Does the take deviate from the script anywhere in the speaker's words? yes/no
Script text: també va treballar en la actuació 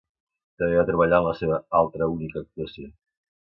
yes